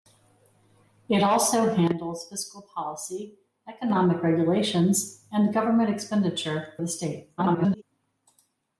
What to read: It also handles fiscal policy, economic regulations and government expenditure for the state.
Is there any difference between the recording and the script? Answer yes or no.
yes